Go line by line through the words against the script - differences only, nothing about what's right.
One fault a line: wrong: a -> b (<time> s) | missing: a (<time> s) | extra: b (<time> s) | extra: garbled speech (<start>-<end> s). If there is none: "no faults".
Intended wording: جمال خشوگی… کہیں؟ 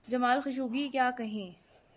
extra: کیا (0.9 s)